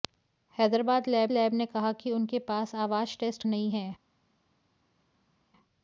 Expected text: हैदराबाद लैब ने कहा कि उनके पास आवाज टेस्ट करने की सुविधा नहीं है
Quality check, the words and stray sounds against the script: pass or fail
fail